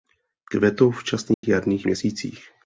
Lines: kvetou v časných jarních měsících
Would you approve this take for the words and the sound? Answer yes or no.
no